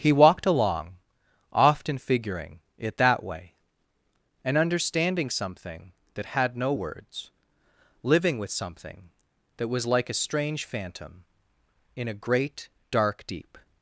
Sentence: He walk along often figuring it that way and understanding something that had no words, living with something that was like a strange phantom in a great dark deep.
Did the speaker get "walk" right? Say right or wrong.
wrong